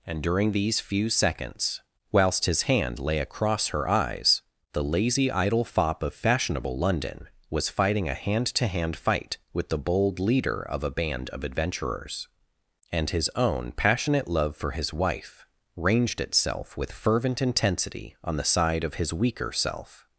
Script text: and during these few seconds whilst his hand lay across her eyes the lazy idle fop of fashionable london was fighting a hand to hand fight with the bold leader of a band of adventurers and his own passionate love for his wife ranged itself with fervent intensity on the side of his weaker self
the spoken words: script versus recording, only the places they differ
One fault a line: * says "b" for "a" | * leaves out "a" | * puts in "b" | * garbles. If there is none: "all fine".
all fine